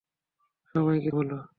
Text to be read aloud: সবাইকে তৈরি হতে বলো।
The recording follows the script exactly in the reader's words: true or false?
false